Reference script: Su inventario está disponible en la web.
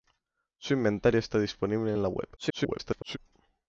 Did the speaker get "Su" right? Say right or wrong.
right